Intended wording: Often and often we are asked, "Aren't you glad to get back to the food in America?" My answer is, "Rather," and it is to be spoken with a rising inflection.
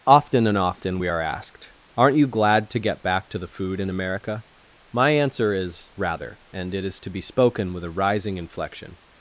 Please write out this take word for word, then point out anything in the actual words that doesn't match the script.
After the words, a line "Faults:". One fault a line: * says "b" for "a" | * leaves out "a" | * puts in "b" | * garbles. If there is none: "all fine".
Often and often we are asked, "Aren't you glad to get back to the food in America?" My answer is, "Rather," and it is to be spoken with a rising inflection.
Faults:
all fine